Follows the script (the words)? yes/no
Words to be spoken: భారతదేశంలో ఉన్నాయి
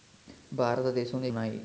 yes